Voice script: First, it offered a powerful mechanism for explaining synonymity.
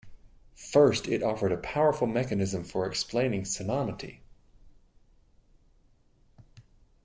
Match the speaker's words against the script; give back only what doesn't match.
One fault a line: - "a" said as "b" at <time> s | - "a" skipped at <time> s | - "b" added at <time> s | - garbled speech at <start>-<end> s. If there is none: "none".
none